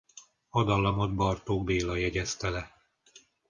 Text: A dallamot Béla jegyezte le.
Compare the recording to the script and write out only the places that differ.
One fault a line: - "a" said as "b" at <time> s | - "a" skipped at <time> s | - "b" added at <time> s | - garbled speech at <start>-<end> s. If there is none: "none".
- "Bartók" added at 1.1 s